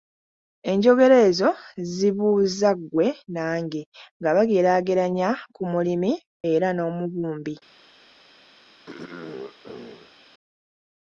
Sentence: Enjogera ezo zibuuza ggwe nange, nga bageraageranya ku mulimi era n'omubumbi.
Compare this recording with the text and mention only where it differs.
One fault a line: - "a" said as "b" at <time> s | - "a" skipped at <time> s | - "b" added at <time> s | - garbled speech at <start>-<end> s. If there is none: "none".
none